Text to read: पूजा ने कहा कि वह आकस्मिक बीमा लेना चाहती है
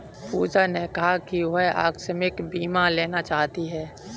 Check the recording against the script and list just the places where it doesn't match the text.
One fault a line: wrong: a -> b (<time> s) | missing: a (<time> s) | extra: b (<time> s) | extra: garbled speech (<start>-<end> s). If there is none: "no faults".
no faults